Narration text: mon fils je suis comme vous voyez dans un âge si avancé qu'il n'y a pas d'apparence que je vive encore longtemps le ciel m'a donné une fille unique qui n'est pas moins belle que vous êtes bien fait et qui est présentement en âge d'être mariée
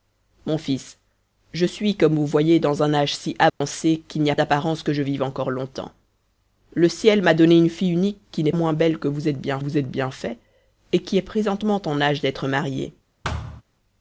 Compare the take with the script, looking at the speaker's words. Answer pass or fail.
fail